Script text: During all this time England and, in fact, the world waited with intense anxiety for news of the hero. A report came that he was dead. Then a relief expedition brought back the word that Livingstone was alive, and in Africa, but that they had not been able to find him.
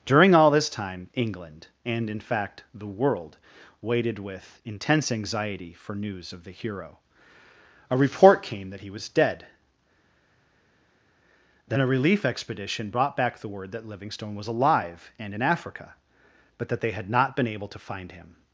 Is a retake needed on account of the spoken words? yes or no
no